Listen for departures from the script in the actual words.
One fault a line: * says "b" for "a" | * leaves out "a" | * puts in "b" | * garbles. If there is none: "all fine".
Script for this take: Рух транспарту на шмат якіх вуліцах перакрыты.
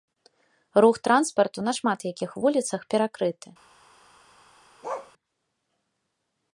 all fine